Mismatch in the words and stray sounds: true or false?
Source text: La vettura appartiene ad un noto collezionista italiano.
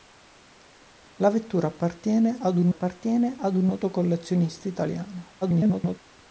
true